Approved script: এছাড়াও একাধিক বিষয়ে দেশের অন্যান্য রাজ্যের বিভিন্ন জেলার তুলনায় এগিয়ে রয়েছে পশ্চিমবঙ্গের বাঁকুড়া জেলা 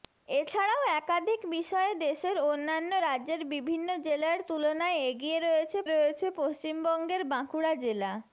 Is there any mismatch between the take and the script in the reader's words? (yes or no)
yes